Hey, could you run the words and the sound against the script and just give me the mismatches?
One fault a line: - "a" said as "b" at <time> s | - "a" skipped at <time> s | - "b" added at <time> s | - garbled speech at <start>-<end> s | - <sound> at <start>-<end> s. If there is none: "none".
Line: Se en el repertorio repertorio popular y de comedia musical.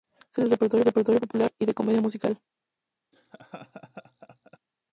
- laugh at 3.1-4.6 s